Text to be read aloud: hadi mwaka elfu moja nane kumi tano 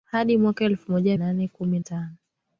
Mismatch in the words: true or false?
false